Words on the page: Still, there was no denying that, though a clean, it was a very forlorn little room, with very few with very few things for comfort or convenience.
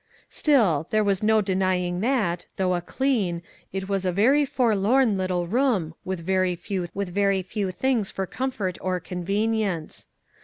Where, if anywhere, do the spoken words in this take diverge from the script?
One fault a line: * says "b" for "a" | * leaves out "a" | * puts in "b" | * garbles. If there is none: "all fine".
all fine